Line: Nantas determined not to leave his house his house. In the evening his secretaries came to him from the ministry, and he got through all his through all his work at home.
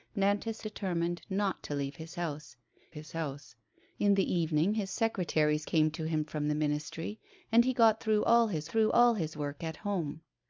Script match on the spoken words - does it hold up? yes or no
yes